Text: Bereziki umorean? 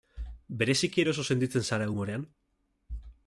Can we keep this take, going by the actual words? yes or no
no